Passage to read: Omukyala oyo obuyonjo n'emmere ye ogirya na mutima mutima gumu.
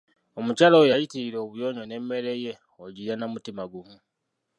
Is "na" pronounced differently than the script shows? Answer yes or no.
no